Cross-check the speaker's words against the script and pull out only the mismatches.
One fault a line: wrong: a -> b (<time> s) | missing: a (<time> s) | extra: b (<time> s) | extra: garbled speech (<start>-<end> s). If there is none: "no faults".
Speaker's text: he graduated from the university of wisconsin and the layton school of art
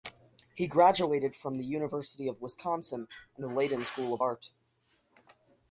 no faults